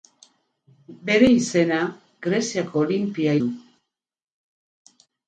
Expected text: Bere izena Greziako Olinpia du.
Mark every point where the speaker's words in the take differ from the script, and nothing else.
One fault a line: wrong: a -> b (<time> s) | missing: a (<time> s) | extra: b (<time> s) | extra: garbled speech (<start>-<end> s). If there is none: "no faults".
no faults